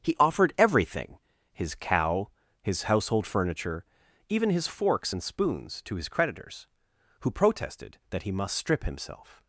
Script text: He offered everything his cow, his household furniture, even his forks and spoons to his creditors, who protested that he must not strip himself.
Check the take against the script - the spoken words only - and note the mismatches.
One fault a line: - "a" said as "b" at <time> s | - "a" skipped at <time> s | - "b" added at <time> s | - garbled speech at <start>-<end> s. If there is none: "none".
- "not" skipped at 8.6 s